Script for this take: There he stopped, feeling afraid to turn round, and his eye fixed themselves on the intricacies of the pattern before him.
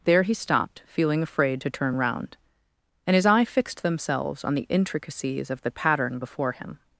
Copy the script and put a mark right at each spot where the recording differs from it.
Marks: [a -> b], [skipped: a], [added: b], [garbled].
There he stopped, feeling afraid to turn round, and his eye fixed themselves on the intricacies of the pattern before him.